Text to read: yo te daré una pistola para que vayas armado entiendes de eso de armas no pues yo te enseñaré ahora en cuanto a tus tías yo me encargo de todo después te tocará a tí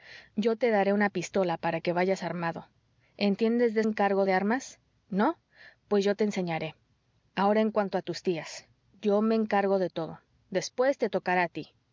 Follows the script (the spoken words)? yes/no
no